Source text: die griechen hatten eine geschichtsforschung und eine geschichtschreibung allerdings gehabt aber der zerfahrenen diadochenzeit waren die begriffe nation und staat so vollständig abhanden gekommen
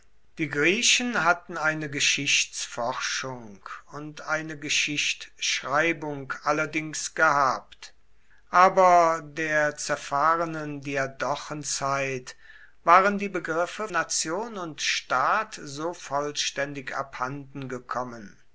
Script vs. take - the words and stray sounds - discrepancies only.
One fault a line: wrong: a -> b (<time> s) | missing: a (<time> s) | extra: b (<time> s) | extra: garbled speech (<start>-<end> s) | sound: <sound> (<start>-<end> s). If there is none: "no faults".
no faults